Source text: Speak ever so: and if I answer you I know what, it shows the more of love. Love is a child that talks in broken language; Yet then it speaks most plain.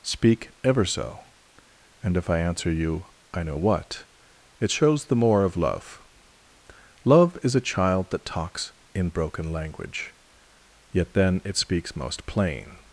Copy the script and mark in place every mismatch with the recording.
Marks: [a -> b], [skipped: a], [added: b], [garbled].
Speak ever so: and if I answer you I know what, it shows the more of love. Love is a child that talks in broken language; Yet then it speaks most plain.